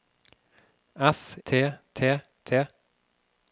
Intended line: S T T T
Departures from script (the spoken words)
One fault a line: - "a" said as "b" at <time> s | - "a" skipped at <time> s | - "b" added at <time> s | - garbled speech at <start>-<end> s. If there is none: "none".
none